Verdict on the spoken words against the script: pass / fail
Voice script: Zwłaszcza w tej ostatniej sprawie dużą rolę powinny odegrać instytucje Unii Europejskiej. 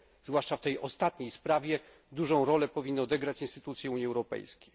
pass